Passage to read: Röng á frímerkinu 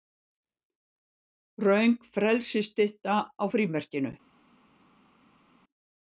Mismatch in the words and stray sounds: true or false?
true